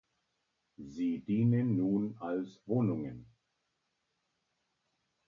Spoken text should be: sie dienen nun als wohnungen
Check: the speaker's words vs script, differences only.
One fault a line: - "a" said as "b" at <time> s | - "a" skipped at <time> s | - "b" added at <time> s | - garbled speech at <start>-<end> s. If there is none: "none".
none